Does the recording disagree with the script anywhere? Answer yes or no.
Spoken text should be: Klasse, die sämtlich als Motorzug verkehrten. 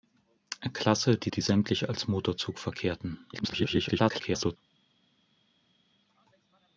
yes